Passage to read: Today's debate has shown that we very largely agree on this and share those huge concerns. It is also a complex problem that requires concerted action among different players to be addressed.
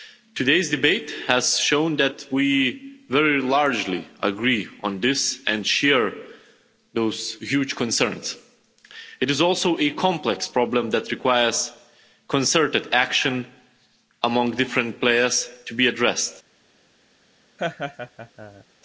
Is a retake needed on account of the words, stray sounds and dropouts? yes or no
yes